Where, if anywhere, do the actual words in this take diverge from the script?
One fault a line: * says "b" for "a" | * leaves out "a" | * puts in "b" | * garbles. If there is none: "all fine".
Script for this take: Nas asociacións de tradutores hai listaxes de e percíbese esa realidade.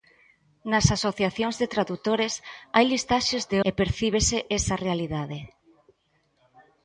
all fine